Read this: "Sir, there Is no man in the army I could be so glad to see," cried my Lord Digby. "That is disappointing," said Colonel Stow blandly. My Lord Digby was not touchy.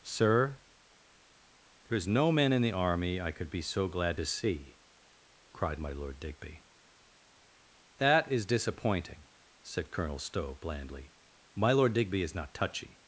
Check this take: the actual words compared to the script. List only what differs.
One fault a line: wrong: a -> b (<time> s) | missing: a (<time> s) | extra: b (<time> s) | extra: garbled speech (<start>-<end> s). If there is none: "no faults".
wrong: was -> is (12.2 s)